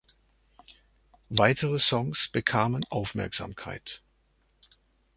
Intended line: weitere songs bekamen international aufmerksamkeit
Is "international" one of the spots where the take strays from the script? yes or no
yes